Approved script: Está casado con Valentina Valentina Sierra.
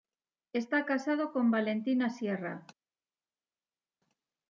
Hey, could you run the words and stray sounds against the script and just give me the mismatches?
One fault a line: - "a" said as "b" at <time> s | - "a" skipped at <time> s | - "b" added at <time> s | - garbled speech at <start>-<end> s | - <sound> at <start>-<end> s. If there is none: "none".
- "Valentina" skipped at 2.1 s